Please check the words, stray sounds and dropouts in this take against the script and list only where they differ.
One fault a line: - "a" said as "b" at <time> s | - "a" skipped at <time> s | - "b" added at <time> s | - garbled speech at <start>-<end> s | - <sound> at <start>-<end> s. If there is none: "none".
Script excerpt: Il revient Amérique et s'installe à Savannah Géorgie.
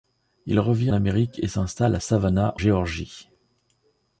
none